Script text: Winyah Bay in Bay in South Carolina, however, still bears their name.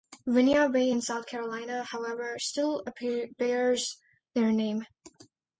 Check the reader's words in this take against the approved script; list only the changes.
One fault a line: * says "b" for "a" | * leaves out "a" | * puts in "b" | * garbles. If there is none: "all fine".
* leaves out "Bay in"